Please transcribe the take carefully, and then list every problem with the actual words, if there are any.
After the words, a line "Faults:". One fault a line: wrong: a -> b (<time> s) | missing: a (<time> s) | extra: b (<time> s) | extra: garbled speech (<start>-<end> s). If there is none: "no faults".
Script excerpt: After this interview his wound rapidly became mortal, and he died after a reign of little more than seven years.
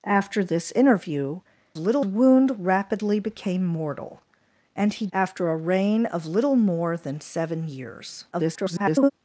After this interview little wound rapidly became mortal, and he after a reign of little more than seven years. [garbled]
Faults:
wrong: his -> little (1.8 s)
missing: died (5.1 s)
extra: garbled speech (8.3-9.1 s)